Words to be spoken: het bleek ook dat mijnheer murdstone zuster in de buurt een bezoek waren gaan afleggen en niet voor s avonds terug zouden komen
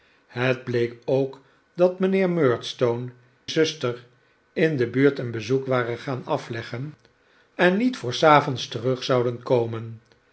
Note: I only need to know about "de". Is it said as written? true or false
true